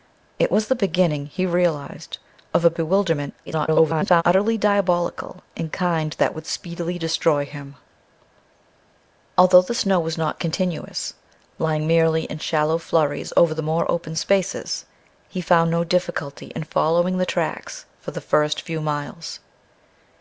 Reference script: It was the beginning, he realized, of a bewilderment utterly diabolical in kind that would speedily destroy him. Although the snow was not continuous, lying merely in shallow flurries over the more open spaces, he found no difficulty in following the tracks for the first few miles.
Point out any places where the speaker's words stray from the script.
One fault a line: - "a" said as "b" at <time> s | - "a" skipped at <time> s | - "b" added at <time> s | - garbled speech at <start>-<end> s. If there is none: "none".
- garbled speech at 3.5-4.2 s